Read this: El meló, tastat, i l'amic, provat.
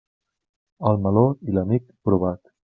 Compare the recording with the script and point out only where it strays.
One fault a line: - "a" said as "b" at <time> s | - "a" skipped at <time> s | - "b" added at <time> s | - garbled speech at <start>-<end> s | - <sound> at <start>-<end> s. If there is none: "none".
- "tastat" skipped at 1.2 s